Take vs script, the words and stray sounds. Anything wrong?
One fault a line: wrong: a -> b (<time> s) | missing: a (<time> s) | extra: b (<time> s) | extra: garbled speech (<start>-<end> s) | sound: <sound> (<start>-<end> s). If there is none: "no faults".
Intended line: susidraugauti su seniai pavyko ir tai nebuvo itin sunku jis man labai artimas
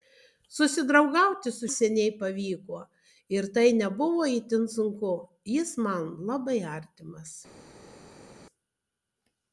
no faults